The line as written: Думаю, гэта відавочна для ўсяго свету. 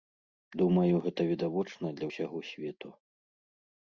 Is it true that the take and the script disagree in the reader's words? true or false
false